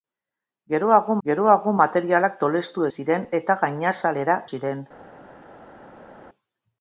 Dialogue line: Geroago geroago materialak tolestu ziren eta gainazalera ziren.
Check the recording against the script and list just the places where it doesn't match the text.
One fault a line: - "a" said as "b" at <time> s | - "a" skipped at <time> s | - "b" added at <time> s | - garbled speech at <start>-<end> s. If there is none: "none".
none